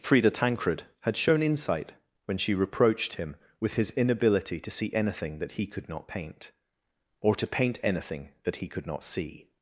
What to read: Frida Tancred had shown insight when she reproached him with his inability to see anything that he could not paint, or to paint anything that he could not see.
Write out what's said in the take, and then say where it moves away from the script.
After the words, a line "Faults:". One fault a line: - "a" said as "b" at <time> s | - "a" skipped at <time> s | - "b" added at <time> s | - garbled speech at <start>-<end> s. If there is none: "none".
Frida Tancred had shown insight when she reproached him with his inability to see anything that he could not paint, or to paint anything that he could not see.
Faults:
none